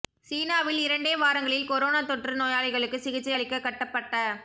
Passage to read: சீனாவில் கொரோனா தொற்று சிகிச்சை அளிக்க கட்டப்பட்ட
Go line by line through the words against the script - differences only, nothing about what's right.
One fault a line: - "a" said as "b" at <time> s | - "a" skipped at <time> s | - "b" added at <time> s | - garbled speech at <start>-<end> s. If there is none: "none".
- "இரண்டே வாரங்களில்" added at 0.8 s
- "நோயாளிகளுக்கு" added at 2.4 s